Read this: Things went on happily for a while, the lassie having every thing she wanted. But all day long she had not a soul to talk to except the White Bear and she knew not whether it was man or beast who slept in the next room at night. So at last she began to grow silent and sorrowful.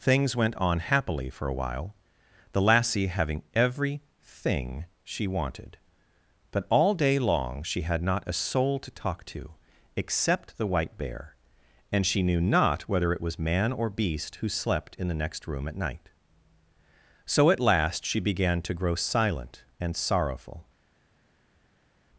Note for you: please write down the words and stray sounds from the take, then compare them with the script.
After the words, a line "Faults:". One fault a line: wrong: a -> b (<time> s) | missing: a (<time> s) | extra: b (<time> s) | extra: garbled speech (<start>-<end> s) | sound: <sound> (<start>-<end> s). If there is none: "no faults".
Things went on happily for a while, the lassie having every thing she wanted. But all day long she had not a soul to talk to except the White Bear and she knew not whether it was man or beast who slept in the next room at night. So at last she began to grow silent and sorrowful.
Faults:
no faults